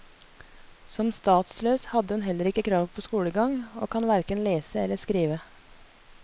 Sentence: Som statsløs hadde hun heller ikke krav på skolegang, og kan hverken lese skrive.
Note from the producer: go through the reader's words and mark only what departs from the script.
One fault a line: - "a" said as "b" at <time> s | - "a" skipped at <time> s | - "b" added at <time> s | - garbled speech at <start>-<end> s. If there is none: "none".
- "eller" added at 4.9 s